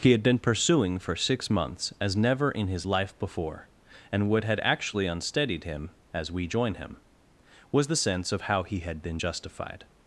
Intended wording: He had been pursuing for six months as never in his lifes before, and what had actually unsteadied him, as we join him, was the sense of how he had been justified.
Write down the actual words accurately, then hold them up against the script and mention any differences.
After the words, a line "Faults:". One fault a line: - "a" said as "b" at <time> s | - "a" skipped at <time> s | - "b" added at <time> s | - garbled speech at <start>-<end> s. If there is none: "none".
He had been pursuing for six months as never in his life before, and what had actually unsteadied him, as we join him, was the sense of how he had been justified.
Faults:
- "lifes" said as "life" at 2.9 s